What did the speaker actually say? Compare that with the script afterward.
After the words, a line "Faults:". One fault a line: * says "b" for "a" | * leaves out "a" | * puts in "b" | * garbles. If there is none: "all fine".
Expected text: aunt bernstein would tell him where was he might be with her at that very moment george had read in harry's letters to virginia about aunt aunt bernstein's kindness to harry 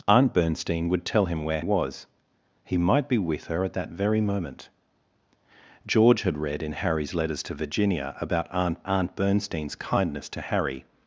aunt bernstein would tell him where was he might be with her at that very moment george had read in harry's letters to virginia about aunt aunt bernstein's kindness to harry
Faults:
all fine